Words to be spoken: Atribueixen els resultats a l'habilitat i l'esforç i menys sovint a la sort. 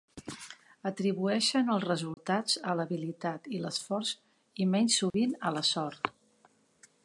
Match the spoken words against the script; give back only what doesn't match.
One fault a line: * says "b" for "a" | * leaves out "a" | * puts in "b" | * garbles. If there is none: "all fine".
all fine